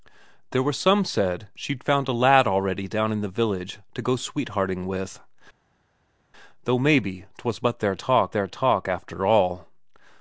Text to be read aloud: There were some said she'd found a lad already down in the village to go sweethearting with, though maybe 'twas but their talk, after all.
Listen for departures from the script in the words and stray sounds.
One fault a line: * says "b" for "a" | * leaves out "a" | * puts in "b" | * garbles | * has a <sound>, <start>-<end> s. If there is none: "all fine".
* puts in "their talk"